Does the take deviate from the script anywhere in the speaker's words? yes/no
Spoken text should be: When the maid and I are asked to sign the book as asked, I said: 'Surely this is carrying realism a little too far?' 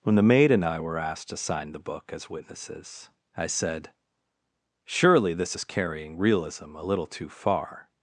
yes